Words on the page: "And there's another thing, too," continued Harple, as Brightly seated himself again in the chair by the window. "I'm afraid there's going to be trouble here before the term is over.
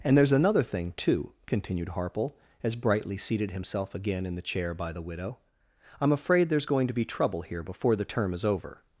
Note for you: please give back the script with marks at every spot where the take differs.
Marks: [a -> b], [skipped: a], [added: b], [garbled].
"And there's another thing, too," continued Harple, as Brightly seated himself again in the chair by the [window. -> widow] "I'm afraid there's going to be trouble here before the term is over.